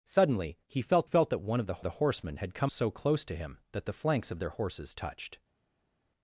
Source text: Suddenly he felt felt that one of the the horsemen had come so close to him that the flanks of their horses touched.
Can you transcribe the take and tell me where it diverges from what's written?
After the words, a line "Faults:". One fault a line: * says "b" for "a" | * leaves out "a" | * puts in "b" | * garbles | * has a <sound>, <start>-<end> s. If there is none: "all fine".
Suddenly he felt felt that one of the the horsemen had come so close to him that the flanks of their horses touched.
Faults:
all fine